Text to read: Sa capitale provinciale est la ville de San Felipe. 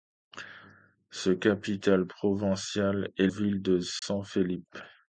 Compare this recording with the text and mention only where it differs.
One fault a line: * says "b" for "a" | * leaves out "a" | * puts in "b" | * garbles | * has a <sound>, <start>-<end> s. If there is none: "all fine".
* leaves out "la"
* has a dropout, 4.0-4.0 s